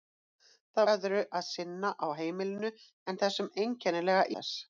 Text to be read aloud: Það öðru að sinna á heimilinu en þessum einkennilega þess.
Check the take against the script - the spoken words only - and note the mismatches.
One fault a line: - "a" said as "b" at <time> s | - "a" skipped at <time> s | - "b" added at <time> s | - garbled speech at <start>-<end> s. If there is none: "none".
none